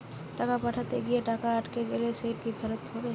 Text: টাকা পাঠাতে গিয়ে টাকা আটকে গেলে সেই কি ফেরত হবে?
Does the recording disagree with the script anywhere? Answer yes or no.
no